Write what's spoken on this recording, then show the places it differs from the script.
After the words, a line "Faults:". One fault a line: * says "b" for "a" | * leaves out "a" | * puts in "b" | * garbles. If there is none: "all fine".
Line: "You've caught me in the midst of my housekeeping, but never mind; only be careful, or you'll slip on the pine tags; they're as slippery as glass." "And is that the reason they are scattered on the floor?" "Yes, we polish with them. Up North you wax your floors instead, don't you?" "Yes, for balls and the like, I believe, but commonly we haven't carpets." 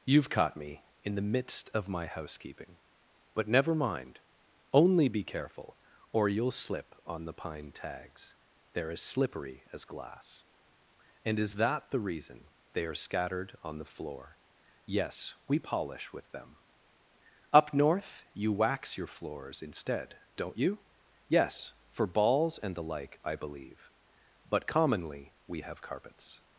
"You've caught me in the midst of my housekeeping, but never mind; only be careful, or you'll slip on the pine tags; they're as slippery as glass." "And is that the reason they are scattered on the floor?" "Yes, we polish with them. Up North you wax your floors instead, don't you?" "Yes, for balls and the like, I believe, but commonly we have carpets."
Faults:
* says "have" for "haven't"